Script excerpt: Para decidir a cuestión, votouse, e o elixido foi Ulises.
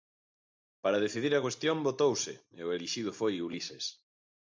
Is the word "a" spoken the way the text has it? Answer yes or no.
yes